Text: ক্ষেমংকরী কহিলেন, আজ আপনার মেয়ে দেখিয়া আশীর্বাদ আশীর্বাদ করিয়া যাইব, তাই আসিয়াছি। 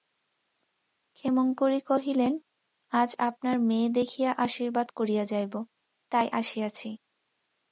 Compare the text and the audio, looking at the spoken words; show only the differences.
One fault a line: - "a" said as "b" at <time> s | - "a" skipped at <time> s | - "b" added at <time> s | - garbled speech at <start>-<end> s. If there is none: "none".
- "আশীর্বাদ" skipped at 4.9 s